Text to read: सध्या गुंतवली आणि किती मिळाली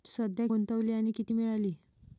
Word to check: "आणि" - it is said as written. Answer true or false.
true